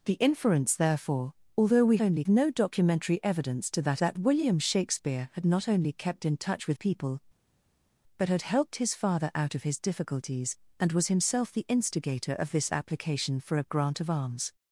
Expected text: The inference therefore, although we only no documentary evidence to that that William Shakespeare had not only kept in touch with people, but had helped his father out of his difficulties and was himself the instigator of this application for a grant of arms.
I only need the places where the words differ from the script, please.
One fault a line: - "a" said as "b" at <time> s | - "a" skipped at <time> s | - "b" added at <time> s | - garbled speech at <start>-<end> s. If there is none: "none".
none